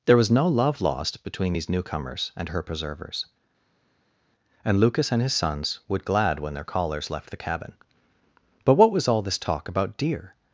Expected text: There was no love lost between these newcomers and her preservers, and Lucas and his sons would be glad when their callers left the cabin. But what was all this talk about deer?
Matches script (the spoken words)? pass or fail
fail